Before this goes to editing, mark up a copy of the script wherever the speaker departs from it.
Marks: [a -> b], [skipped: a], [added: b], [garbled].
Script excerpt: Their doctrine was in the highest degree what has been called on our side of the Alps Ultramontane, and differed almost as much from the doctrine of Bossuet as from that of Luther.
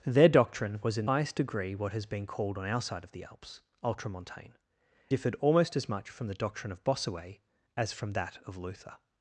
Their doctrine was in [skipped: the] highest degree what has been called on our side of the Alps Ultramontane, [skipped: and] differed almost as much from the doctrine of Bossuet as from that of Luther.